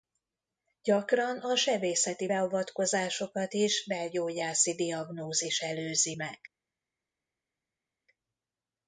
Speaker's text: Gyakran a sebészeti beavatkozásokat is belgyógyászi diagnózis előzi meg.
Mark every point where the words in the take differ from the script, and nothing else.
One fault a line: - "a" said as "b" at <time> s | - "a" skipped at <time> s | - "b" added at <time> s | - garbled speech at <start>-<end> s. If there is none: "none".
none